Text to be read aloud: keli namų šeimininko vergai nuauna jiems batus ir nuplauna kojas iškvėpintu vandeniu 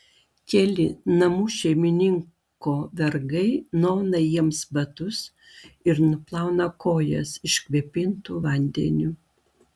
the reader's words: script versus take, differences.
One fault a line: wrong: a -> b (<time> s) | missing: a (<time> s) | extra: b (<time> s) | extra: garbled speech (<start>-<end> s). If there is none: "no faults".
no faults